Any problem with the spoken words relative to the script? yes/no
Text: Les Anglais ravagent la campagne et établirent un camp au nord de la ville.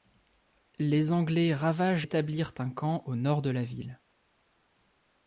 yes